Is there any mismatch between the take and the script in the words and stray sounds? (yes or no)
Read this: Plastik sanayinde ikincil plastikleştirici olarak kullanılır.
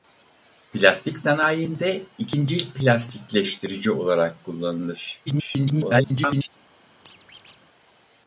yes